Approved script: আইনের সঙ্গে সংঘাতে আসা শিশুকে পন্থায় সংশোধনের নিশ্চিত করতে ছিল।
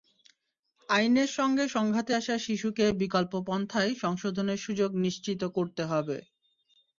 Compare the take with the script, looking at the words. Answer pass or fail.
fail